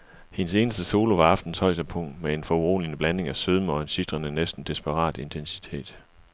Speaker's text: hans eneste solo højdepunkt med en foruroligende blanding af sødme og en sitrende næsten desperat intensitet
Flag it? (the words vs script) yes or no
yes